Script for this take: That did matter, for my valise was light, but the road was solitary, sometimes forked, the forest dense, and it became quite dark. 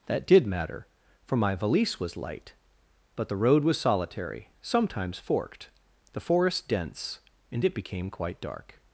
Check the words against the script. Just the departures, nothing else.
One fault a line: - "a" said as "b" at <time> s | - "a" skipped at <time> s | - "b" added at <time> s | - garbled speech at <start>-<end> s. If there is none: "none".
none